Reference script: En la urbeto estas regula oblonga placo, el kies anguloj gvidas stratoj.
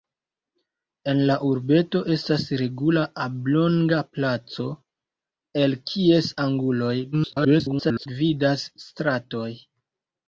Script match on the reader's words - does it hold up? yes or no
no